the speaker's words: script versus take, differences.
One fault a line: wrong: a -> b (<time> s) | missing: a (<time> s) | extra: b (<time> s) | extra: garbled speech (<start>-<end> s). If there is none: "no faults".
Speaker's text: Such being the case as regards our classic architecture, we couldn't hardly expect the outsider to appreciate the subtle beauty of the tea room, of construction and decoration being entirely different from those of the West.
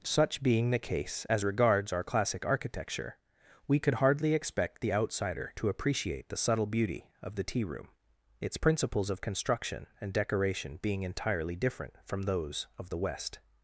wrong: couldn't -> could (3.8 s)
extra: its principles (8.4 s)